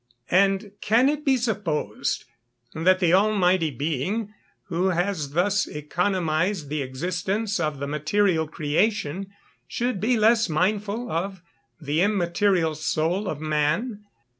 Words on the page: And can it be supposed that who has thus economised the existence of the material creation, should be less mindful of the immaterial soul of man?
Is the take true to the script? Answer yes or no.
no